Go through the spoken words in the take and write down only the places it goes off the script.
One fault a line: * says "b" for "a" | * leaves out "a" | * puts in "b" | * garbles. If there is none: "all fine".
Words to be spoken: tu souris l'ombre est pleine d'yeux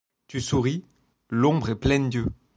all fine